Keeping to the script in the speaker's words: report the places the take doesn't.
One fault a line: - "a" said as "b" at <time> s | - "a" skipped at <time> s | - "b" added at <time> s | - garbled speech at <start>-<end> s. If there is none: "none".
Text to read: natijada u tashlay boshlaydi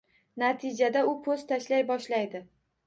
- "po`st" added at 1.3 s